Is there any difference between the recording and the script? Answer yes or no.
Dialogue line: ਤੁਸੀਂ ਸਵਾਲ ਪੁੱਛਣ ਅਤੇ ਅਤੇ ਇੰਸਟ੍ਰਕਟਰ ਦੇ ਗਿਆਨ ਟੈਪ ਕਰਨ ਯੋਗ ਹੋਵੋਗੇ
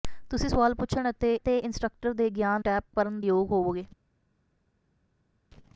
no